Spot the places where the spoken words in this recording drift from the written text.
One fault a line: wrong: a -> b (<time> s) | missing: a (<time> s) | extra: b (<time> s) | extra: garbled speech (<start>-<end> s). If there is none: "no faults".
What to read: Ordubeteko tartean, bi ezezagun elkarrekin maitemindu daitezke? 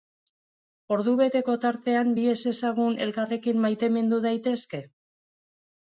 no faults